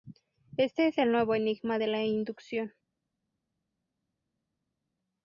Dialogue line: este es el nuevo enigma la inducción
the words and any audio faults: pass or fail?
fail